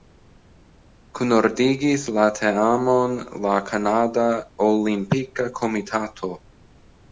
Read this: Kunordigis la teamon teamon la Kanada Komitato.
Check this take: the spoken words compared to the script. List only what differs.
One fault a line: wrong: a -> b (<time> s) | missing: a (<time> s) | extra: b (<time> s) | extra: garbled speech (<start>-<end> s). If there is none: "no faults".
missing: teamon (3.1 s)
extra: Olimpika (4.7 s)